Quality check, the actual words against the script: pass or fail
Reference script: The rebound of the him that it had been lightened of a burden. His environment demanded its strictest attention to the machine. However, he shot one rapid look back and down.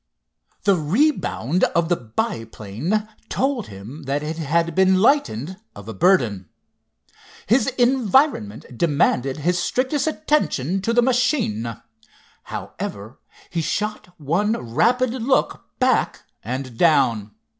fail